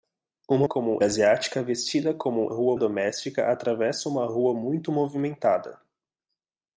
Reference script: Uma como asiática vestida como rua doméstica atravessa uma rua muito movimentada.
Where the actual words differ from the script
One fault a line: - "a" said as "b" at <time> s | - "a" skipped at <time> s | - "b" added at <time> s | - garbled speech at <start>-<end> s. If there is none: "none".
none